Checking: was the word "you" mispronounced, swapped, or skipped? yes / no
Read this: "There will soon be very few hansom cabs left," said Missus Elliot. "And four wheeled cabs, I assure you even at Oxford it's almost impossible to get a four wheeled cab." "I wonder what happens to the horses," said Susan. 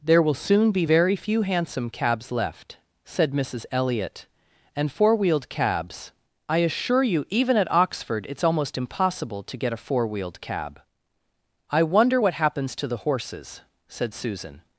no